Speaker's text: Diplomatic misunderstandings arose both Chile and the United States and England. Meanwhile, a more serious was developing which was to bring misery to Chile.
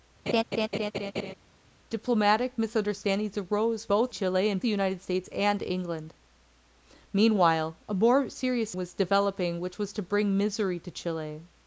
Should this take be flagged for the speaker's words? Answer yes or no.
no